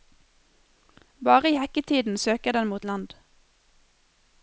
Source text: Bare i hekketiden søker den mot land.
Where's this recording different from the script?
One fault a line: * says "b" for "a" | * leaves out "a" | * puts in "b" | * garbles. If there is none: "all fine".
all fine